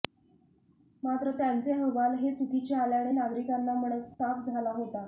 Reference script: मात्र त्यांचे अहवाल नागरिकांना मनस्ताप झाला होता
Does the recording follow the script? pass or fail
fail